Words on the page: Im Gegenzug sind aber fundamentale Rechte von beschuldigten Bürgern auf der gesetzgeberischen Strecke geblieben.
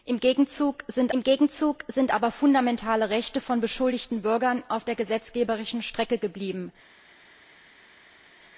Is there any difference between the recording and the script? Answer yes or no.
yes